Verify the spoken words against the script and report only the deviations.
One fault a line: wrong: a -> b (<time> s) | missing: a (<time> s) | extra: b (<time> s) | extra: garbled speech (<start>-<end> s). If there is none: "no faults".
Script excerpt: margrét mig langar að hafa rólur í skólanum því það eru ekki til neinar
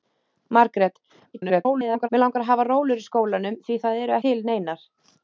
extra: garbled speech (1.3-2.1 s)
missing: ekki (4.2 s)